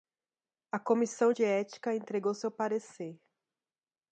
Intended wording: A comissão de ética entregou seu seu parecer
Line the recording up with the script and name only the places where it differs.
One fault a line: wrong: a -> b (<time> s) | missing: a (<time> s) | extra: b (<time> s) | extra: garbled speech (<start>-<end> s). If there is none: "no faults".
missing: seu (2.5 s)